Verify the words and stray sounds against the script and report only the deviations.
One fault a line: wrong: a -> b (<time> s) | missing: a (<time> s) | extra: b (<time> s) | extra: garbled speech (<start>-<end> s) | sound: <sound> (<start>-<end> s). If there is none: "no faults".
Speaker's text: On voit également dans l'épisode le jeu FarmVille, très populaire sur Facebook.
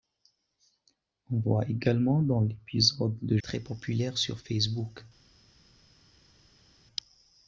missing: jeu FarmVille (3.4 s)